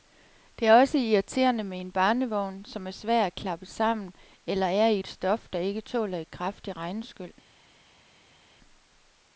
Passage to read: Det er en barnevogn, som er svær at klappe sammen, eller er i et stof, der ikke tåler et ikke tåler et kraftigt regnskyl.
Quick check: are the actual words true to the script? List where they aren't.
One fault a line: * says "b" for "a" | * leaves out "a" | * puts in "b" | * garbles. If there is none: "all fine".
* puts in "også irriterende med"
* leaves out "ikke tåler et"